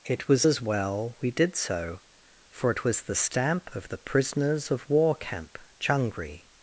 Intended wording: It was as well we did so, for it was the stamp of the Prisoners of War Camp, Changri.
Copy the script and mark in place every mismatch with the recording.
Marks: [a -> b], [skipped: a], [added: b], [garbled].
It was as well we did so, for it was the stamp of the Prisoners of War Camp, Changri.